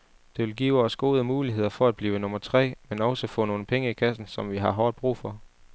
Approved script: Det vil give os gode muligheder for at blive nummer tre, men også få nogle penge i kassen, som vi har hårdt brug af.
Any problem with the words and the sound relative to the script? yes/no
yes